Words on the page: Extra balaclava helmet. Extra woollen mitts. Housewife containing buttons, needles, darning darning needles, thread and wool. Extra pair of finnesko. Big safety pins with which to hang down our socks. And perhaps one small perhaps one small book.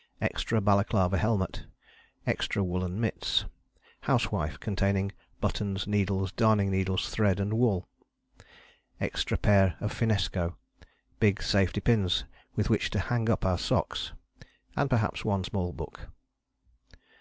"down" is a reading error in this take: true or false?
true